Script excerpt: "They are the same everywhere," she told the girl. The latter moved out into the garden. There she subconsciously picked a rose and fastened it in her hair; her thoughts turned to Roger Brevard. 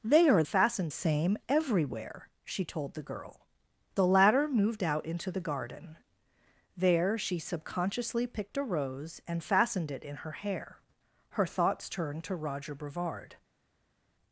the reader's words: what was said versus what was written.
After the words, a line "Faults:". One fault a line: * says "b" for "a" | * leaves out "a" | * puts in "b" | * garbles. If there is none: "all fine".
"They are fastened same everywhere," she told the girl. The latter moved out into the garden. There she subconsciously picked a rose and fastened it in her hair; her thoughts turned to Roger Brevard.
Faults:
* says "fastened" for "the"